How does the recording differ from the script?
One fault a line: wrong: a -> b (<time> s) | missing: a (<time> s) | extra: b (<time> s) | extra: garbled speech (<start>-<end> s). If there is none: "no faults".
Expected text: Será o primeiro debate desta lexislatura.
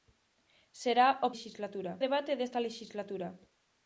wrong: primeiro -> lexislatura (1.3 s)